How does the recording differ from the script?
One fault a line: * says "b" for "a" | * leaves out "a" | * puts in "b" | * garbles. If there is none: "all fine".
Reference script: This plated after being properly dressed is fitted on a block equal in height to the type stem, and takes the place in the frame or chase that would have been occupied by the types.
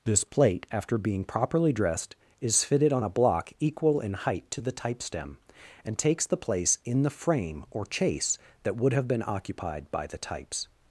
* says "plate" for "plated"